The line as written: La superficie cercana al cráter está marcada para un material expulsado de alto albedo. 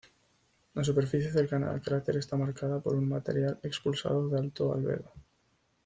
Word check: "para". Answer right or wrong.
wrong